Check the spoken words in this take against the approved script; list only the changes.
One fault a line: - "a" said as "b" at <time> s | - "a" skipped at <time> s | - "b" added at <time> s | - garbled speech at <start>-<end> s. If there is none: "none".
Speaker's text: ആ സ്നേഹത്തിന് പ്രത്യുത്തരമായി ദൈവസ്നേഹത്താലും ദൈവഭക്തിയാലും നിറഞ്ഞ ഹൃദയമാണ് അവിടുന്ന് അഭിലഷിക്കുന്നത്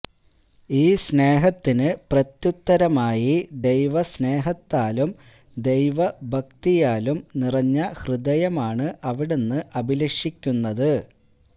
- "ആ" said as "ഈ" at 0.7 s